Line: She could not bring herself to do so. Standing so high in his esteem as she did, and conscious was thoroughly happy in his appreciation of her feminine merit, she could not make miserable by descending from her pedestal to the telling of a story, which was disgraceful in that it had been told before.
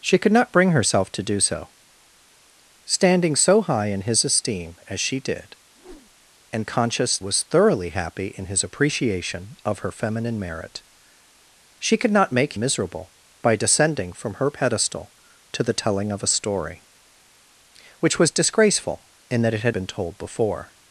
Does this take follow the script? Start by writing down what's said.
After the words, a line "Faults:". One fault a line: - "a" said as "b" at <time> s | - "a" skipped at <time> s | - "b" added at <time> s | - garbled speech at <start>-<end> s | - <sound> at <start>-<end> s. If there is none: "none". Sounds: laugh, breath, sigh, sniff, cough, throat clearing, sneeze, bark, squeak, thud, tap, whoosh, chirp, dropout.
She could not bring herself to do so. Standing so high in his esteem as she did, and conscious was thoroughly happy in his appreciation of her feminine merit, she could not make miserable by descending from her pedestal to the telling of a story, which was disgraceful in that it had been told before.
Faults:
- whoosh at 5.7-6.3 s